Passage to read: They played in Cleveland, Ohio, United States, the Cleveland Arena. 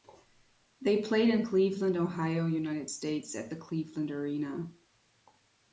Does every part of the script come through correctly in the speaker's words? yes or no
no